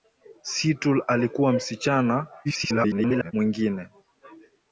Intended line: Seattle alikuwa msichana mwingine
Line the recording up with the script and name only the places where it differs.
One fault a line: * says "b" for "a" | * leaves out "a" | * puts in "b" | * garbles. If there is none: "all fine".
* garbles